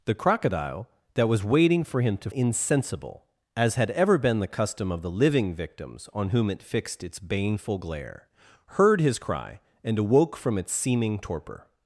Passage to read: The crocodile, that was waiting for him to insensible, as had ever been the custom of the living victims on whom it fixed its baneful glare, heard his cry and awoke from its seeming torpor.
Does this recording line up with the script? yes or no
yes